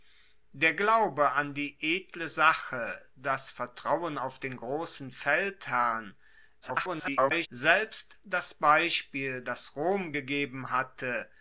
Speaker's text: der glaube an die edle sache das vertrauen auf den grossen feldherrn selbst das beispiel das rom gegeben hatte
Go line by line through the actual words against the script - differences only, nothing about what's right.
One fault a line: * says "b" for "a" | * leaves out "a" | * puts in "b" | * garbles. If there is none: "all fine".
* garbles